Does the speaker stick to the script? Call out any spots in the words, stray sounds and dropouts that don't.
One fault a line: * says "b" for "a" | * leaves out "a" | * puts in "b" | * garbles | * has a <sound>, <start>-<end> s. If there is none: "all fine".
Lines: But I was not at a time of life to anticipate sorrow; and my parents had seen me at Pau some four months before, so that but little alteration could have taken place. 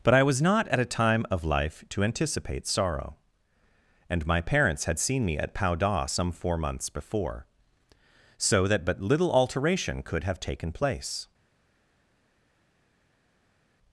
* puts in "da"